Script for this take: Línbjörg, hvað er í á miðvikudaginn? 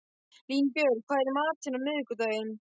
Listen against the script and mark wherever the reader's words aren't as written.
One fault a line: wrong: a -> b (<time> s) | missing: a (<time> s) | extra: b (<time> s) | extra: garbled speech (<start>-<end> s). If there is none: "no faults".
extra: matinn (1.4 s)